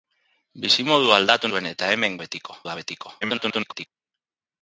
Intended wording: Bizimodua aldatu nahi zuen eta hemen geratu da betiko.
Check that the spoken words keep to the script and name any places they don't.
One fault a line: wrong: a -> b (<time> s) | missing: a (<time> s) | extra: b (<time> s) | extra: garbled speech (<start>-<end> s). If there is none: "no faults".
missing: nahi (1.5 s)
wrong: geratu -> betiko (2.2 s)
extra: garbled speech (3.2-3.9 s)